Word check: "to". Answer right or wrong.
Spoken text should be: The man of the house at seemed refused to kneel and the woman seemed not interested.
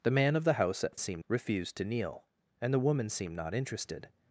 right